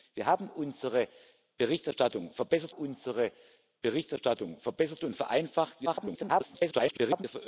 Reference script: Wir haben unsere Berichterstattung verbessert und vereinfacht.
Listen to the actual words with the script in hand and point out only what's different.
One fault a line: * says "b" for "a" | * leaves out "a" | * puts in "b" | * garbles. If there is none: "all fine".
* puts in "unsere Berichterstattung verbessert"
* garbles